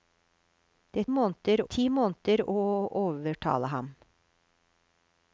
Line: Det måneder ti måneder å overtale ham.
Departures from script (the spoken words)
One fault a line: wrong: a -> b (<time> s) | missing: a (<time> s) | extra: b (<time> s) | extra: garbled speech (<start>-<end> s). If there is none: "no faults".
no faults